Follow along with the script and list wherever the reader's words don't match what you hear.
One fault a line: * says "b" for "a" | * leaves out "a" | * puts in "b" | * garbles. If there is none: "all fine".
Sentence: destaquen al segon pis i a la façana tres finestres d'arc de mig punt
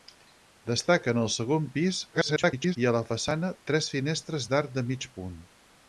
* garbles